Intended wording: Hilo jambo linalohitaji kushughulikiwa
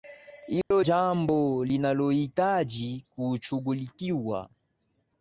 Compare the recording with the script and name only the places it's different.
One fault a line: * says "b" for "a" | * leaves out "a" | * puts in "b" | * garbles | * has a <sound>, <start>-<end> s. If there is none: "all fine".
* has a dropout, 0.6-0.7 s